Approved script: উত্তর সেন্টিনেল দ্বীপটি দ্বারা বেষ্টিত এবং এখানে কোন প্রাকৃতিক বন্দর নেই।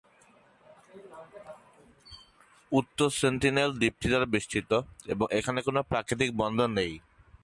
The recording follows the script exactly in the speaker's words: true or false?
true